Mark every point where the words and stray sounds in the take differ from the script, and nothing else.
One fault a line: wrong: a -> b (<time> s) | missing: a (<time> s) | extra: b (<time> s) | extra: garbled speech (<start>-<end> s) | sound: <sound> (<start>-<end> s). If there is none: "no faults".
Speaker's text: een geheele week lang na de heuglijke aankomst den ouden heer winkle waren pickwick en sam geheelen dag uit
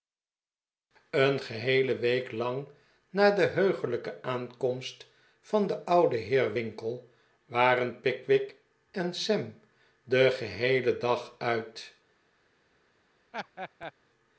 extra: van (5.4 s)
extra: den (10.0 s)
sound: laugh (13.3-13.9 s)